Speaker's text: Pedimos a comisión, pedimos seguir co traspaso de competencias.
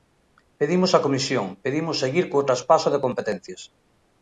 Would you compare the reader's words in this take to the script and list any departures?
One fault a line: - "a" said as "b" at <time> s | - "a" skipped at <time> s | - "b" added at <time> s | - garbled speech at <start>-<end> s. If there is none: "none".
none